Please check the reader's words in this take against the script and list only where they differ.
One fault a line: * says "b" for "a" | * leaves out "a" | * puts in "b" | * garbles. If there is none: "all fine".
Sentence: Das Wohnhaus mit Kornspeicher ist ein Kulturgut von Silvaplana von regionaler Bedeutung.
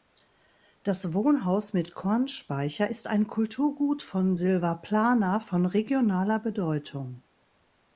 all fine